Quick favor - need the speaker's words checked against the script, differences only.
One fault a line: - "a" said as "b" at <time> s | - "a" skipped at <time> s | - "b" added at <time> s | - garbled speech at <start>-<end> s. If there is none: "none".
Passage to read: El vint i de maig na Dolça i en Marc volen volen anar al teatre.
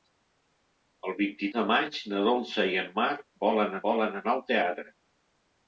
none